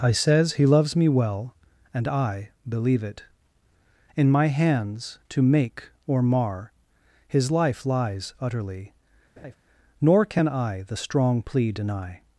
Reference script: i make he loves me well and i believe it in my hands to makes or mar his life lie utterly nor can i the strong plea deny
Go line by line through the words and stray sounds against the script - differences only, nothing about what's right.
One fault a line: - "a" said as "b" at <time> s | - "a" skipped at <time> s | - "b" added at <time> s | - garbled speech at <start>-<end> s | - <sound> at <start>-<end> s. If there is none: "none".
- "make" said as "says" at 0.1 s
- "makes" said as "make" at 5.4 s
- "lie" said as "lies" at 7.8 s
- laugh at 9.4-9.6 s